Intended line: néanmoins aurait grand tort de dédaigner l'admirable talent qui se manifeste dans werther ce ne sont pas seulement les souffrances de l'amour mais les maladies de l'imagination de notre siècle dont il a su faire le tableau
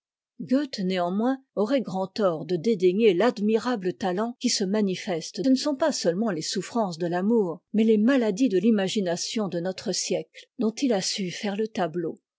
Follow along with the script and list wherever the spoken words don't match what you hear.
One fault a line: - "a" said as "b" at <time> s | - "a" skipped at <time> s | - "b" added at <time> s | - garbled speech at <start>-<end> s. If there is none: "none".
- "dans werther ce" skipped at 5.4 s